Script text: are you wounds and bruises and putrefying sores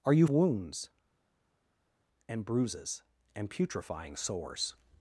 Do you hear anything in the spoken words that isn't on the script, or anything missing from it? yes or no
no